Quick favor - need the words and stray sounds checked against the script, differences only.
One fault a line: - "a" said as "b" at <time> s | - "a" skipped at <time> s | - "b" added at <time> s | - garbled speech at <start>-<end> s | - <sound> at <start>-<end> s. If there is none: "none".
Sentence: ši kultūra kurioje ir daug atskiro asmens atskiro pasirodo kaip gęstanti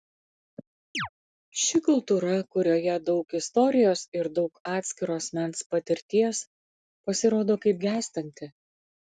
- chirp at 0.9-1.1 s
- "daug istorijos" added at 3.1 s
- "atskiro" said as "patirties" at 5.8 s